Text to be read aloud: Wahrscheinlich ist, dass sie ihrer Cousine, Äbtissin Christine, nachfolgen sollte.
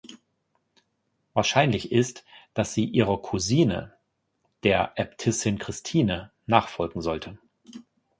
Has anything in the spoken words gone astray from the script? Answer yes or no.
yes